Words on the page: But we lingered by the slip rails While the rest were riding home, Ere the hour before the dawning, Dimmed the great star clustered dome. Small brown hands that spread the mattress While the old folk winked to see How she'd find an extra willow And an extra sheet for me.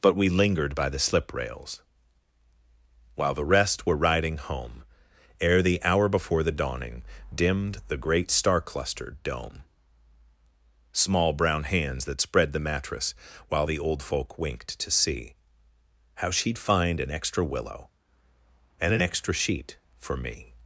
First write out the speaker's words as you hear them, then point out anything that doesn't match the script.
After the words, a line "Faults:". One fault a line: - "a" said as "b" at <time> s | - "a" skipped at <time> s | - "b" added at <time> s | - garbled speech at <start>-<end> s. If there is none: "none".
But we lingered by the slip rails While the rest were riding home, Ere the hour before the dawning, Dimmed the great star clustered dome. Small brown hands that spread the mattress While the old folk winked to see How she'd find an extra willow And an extra sheet for me.
Faults:
none